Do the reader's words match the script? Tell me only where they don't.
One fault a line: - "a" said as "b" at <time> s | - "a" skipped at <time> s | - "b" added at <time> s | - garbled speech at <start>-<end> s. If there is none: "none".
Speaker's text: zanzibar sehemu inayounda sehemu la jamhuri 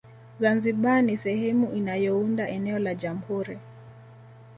- "ni" added at 1.0 s
- "sehemu" said as "eneo" at 2.5 s